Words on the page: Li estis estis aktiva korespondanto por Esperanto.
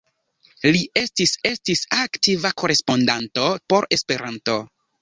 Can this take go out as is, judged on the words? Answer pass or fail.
pass